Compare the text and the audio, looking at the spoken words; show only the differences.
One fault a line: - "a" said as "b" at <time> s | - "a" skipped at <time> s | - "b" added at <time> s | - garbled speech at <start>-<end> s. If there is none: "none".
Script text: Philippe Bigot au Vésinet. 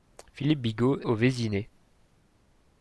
none